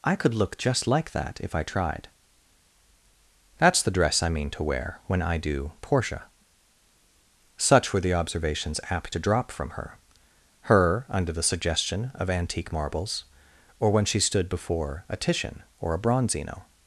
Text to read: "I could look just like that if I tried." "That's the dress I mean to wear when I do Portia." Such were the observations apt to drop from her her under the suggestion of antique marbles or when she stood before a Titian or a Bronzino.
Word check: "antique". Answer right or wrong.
right